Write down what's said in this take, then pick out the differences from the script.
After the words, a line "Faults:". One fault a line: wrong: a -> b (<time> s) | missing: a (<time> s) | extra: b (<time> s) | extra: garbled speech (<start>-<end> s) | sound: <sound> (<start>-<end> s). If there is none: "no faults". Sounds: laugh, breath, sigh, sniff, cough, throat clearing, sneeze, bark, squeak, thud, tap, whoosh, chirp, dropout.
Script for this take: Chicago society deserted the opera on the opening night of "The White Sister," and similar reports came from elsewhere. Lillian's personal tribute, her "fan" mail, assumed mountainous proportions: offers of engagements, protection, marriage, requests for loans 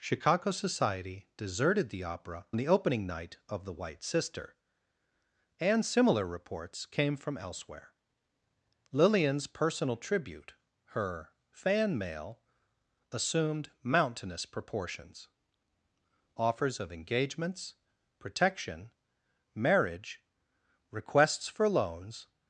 Chicago society deserted the opera the opening night of "The White Sister," and similar reports came from elsewhere. Lillian's personal tribute, her "fan" mail, assumed mountainous proportions: offers of engagements, protection, marriage, requests for loans
Faults:
missing: on (2.5 s)